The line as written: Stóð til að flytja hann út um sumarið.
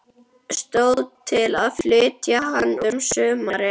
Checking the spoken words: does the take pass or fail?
fail